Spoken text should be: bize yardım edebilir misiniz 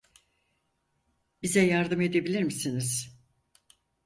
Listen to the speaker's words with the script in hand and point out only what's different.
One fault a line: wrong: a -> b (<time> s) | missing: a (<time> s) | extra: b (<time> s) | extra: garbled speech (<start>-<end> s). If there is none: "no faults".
no faults